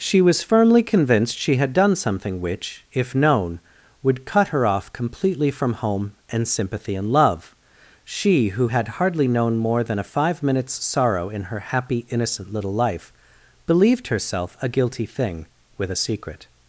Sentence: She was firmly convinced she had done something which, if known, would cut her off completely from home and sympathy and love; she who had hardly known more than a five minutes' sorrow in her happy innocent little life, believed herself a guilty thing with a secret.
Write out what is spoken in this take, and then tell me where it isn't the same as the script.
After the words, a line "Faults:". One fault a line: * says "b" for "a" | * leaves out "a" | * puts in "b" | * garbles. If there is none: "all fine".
She was firmly convinced she had done something which, if known, would cut her off completely from home and sympathy and love; she who had hardly known more than a five minutes' sorrow in her happy innocent little life, believed herself a guilty thing with a secret.
Faults:
all fine